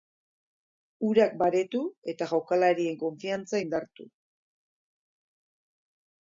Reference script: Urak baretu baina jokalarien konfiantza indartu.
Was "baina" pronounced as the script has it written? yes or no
no